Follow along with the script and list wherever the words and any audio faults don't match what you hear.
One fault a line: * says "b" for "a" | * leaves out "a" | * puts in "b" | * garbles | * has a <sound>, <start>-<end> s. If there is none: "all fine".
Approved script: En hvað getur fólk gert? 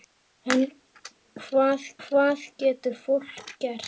* puts in "hvað"